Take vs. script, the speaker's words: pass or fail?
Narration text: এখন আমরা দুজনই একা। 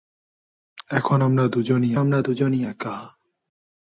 fail